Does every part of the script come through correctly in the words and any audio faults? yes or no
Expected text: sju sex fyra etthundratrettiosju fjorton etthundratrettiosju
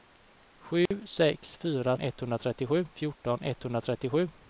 no